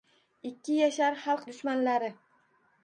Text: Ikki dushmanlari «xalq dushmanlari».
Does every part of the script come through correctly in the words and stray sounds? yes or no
no